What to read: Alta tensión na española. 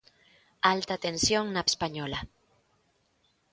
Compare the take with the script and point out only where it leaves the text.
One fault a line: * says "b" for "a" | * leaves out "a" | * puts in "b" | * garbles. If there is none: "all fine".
all fine